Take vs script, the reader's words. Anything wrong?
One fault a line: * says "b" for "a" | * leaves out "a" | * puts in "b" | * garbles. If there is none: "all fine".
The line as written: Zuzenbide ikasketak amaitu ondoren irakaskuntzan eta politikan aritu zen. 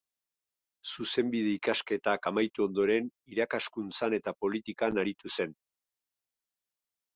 all fine